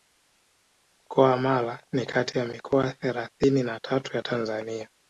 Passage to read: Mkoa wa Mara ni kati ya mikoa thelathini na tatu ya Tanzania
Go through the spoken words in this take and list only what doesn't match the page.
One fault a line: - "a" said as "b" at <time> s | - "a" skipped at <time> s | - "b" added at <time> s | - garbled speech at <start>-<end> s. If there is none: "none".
none